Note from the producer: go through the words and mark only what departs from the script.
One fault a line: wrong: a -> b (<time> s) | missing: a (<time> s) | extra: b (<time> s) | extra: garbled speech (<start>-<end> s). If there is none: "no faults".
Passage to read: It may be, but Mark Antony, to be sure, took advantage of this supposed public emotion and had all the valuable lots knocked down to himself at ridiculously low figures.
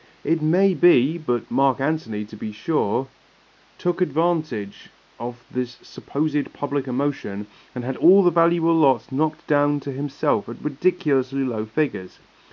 no faults